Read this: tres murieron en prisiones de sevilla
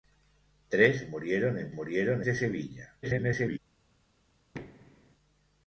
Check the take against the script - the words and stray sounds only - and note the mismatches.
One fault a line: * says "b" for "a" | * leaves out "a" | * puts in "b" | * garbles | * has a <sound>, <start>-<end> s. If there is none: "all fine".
* says "murieron" for "prisiones"
* garbles
* has a thud, 4.5-5.2 s